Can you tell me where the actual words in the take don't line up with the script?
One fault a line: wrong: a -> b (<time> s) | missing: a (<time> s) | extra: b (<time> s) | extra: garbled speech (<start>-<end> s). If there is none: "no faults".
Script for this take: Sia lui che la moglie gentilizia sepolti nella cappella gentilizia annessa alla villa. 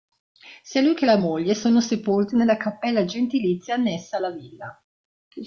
wrong: gentilizia -> sono (1.6 s)